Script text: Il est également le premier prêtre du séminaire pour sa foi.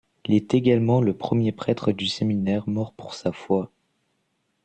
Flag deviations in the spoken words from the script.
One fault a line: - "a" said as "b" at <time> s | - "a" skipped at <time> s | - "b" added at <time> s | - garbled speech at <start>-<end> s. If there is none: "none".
- "mort" added at 2.7 s